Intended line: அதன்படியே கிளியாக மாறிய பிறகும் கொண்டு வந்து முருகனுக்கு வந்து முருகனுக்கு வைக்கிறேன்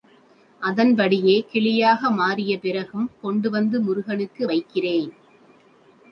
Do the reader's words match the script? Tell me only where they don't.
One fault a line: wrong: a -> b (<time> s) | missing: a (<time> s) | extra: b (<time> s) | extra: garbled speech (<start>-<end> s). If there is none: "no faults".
missing: வந்து முருகனுக்கு (4.4 s)